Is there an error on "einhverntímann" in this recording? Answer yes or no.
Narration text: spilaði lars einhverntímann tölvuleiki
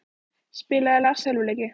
yes